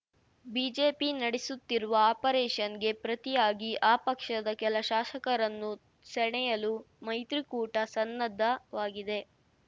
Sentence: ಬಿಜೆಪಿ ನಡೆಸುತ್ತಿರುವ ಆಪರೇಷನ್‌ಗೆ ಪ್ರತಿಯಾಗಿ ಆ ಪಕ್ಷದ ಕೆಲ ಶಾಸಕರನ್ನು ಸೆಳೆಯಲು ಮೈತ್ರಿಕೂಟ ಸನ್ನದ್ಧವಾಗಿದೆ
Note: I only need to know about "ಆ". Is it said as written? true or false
true